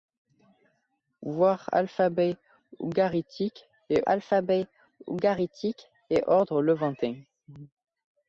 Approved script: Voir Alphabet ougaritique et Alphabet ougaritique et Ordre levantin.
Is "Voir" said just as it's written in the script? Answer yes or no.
yes